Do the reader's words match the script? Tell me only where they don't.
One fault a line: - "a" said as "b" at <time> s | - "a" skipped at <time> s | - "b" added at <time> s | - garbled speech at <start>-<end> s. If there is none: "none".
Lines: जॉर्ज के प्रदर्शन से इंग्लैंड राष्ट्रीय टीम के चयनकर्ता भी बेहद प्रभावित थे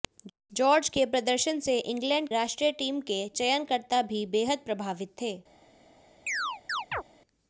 none